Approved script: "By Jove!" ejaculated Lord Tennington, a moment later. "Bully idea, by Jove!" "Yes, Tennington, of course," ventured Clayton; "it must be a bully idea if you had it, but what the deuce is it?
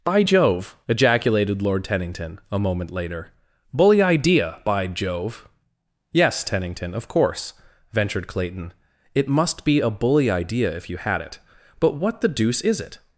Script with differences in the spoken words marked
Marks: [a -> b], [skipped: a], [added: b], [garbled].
"By Jove!" ejaculated Lord Tennington, a moment later. "Bully idea, by Jove!" "Yes, Tennington, of course," ventured Clayton; "it must be a bully idea if you had it, but what the deuce is it?